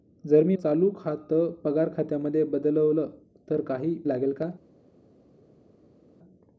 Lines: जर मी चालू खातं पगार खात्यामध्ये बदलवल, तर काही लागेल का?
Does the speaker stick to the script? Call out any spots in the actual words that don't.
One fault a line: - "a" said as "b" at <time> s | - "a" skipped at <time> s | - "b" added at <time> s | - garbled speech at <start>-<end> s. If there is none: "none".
none